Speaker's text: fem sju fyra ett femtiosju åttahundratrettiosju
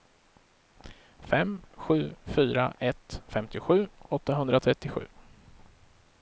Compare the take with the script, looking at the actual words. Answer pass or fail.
pass